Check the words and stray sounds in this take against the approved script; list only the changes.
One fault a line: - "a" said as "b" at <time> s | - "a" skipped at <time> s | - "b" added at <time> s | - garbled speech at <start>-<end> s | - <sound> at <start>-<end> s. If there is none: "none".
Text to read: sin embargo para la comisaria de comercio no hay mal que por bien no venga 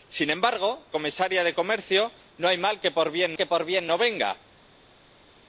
- "para la" skipped at 0.9 s
- "que por bien" added at 3.4 s